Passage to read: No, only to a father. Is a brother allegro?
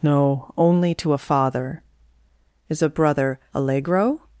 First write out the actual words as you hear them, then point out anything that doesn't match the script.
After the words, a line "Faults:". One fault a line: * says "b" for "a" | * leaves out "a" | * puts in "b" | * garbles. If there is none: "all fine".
No, only to a father. Is a brother allegro?
Faults:
all fine